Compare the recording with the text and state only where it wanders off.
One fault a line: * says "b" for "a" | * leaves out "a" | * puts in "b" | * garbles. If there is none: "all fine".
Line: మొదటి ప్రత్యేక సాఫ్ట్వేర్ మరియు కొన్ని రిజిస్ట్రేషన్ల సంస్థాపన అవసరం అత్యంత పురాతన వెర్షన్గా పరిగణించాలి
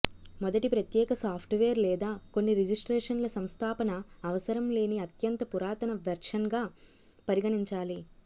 * says "లేదా" for "మరియు"
* puts in "లేని"